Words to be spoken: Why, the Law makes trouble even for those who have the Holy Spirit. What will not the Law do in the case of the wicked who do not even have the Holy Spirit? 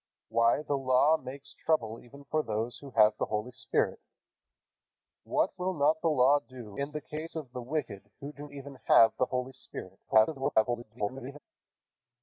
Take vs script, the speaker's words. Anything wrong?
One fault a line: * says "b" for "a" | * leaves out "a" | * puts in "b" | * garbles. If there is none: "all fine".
* leaves out "not"
* garbles